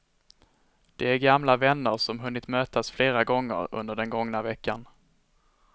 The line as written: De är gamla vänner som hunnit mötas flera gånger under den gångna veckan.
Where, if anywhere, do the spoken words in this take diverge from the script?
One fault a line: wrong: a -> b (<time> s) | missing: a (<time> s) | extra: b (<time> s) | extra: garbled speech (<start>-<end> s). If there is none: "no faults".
no faults